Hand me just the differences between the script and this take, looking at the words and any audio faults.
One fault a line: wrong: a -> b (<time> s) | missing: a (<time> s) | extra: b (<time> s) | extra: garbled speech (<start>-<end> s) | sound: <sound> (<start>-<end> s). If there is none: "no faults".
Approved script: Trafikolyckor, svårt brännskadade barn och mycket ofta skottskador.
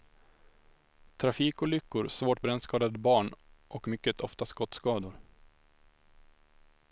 no faults